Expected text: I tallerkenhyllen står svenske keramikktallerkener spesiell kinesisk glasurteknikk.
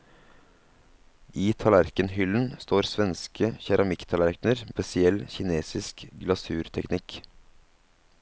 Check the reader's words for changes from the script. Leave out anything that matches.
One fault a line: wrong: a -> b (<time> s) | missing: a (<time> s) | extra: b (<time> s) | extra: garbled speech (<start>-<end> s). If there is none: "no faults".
no faults